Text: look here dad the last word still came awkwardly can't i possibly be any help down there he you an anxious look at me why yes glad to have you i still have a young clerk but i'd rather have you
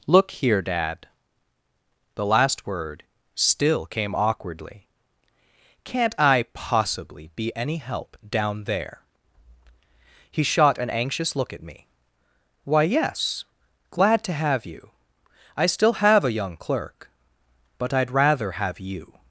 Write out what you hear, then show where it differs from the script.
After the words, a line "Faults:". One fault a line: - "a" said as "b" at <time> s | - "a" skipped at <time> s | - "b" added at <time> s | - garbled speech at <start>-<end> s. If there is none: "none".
look here dad the last word still came awkwardly can't i possibly be any help down there he shot an anxious look at me why yes glad to have you i still have a young clerk but i'd rather have you
Faults:
- "you" said as "shot" at 10.4 s